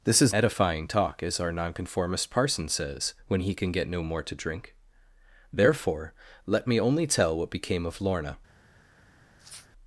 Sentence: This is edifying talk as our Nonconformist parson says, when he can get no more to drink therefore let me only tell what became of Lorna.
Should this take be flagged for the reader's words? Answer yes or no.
no